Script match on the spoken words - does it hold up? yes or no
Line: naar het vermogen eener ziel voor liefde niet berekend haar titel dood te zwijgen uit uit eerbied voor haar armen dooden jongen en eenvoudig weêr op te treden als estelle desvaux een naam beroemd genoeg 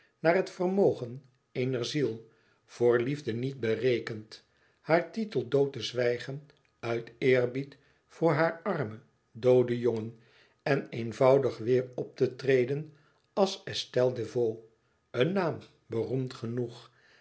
no